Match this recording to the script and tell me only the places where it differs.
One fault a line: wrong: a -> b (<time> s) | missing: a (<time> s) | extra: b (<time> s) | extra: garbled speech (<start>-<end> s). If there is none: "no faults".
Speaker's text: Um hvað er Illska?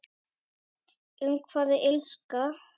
no faults